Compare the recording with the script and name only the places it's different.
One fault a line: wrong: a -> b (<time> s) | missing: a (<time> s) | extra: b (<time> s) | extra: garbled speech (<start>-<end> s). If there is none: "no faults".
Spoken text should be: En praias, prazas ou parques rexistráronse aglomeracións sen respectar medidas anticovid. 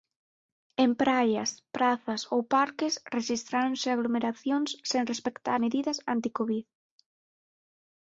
no faults